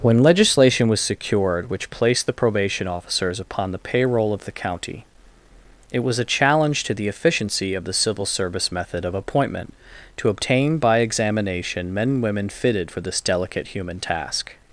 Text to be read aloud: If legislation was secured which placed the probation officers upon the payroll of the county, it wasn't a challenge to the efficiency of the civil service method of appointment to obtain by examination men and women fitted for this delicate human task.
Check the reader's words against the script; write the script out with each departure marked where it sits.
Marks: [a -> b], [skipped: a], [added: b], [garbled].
[If -> When] legislation was secured which placed the probation officers upon the payroll of the county, it [wasn't -> was] a challenge to the efficiency of the civil service method of appointment to obtain by examination men and women fitted for this delicate human task.